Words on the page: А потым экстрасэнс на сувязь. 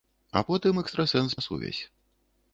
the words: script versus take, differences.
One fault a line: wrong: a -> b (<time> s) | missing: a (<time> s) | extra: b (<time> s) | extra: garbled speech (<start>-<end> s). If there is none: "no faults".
no faults